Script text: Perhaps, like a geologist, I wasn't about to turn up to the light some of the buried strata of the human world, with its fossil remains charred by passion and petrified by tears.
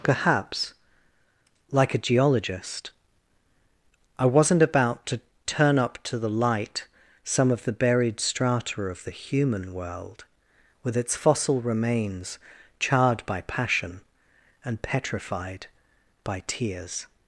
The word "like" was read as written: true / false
true